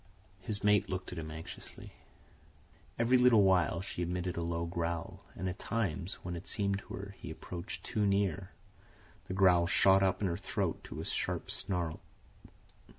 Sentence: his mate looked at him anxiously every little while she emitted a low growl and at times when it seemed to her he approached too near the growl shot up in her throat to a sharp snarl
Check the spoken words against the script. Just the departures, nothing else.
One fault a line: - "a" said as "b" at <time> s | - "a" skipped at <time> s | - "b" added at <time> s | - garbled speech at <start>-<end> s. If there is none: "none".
none